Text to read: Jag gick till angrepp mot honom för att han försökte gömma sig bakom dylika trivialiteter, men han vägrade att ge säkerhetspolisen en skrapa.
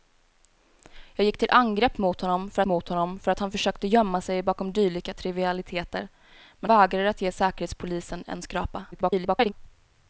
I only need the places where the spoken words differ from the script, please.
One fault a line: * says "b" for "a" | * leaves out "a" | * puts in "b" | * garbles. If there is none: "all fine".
* puts in "mot honom för"
* leaves out "han"
* garbles